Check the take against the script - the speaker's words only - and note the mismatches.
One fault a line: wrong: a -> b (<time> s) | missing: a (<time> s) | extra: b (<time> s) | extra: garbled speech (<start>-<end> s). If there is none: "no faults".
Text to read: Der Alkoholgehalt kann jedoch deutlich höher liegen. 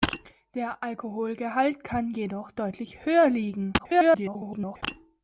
extra: garbled speech (3.8-4.8 s)